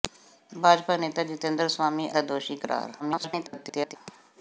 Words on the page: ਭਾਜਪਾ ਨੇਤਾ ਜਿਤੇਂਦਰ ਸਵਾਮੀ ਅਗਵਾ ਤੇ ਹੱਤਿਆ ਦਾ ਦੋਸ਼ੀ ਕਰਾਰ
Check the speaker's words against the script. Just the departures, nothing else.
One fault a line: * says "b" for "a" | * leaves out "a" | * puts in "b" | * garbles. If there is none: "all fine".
* leaves out "ਅਗਵਾ ਤੇ ਹੱਤਿਆ"
* garbles